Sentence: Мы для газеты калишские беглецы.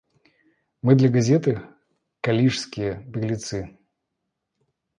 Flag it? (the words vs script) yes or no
no